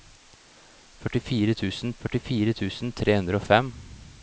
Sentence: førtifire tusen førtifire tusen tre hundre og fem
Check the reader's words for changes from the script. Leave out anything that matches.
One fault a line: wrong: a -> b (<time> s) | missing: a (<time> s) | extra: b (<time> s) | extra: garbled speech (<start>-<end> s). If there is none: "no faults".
no faults